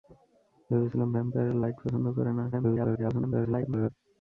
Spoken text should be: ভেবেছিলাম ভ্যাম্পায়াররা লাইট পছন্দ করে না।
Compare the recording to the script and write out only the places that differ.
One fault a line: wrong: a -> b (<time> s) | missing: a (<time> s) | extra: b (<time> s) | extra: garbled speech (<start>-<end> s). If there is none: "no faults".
extra: garbled speech (2.5-3.9 s)